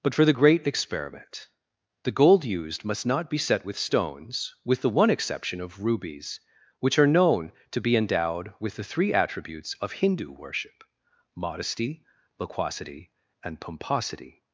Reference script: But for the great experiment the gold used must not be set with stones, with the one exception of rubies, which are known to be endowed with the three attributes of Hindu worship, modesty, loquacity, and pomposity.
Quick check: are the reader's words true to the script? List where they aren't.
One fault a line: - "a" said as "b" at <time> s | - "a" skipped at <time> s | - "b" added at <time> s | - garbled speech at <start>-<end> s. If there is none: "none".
none